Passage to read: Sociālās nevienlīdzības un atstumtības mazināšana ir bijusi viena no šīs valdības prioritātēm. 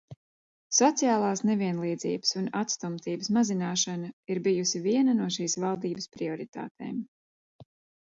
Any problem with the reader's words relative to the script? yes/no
no